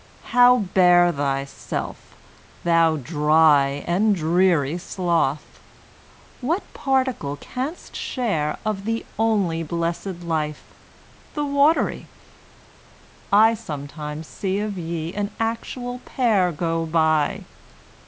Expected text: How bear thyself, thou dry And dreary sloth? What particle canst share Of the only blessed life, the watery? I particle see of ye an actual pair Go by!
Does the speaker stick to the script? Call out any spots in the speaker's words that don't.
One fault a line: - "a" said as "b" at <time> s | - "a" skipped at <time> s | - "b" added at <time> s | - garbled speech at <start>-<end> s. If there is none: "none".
- "particle" said as "sometimes" at 13.5 s